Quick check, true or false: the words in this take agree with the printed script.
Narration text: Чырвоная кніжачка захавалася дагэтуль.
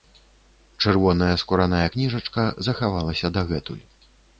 false